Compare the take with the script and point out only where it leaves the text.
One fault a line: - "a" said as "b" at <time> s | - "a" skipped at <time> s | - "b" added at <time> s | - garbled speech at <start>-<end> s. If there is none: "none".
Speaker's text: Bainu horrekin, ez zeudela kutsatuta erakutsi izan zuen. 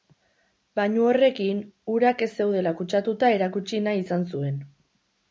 - "urak" added at 1.9 s
- "nahi" added at 3.9 s